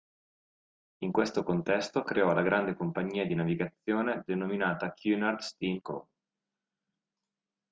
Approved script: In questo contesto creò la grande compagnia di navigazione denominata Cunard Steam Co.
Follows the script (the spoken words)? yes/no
yes